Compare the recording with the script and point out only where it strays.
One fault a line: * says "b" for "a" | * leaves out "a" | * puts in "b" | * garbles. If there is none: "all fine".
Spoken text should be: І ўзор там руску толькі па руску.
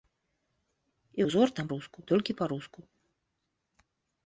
all fine